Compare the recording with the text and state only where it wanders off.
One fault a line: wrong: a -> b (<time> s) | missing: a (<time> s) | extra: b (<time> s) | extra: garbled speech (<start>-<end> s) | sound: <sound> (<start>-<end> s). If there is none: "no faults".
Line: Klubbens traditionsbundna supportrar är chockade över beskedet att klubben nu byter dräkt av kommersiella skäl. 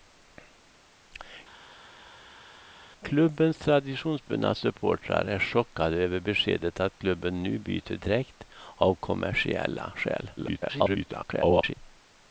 extra: garbled speech (10.4-11.7 s)